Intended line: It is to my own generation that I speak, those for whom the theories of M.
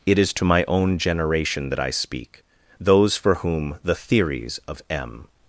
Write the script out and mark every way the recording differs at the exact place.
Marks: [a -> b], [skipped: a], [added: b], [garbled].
It is to my own generation that I speak, those for whom the theories of M.